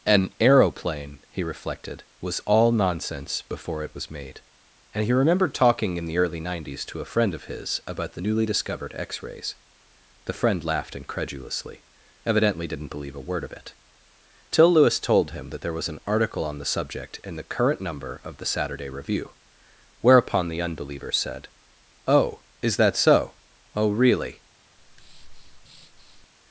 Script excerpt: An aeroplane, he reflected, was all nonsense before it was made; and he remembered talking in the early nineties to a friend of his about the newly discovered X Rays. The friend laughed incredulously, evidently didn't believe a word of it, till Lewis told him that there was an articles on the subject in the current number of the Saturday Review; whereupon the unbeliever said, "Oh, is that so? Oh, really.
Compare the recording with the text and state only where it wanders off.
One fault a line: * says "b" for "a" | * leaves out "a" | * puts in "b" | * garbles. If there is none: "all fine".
* says "article" for "articles"